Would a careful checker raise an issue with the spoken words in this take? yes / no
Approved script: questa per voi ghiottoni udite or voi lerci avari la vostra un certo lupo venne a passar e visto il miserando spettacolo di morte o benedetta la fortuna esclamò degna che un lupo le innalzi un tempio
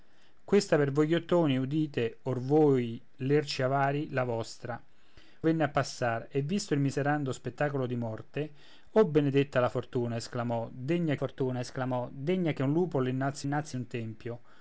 yes